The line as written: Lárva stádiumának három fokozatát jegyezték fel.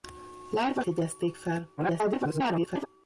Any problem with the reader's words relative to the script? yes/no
yes